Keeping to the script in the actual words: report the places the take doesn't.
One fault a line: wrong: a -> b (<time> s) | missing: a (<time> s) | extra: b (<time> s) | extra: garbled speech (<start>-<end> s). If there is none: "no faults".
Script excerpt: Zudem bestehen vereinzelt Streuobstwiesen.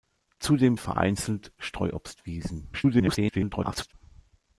missing: bestehen (0.8 s)
extra: garbled speech (2.7-3.9 s)